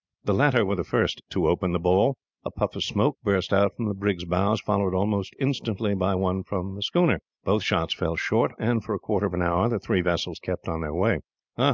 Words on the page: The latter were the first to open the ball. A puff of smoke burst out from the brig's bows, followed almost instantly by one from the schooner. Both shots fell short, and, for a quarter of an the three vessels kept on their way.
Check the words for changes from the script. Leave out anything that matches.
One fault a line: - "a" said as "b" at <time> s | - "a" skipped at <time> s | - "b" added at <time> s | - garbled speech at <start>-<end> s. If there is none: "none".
- "hour" added at 9.4 s